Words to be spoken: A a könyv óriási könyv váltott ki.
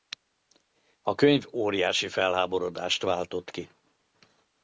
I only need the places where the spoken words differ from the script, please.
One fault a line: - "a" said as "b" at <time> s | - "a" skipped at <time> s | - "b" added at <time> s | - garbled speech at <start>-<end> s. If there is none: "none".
- "a" skipped at 1.1 s
- "könyv" said as "felháborodást" at 2.1 s